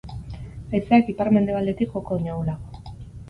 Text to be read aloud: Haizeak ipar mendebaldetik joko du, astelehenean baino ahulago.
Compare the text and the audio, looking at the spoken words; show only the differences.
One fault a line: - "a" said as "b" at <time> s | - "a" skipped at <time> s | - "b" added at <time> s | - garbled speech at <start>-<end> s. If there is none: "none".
- "du astelehenean" skipped at 2.2 s